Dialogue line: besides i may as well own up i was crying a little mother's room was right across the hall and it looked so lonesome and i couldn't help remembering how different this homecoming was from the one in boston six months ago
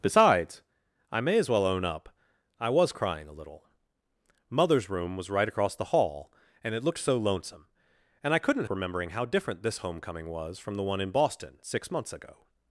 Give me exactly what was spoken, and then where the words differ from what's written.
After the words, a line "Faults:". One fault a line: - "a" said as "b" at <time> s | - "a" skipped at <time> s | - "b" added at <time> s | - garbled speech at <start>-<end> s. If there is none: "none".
besides i may as well own up i was crying a little mother's room was right across the hall and it looked so lonesome and i couldn't remembering how different this homecoming was from the one in boston six months ago
Faults:
- "help" skipped at 8.7 s